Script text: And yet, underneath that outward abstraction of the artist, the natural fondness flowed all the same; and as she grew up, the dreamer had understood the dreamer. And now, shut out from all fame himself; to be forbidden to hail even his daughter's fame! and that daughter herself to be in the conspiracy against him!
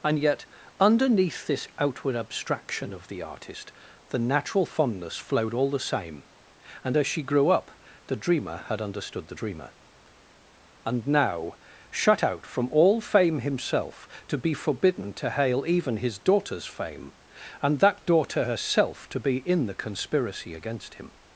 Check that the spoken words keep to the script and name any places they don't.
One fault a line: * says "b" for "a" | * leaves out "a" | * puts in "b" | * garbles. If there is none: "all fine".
* says "this" for "that"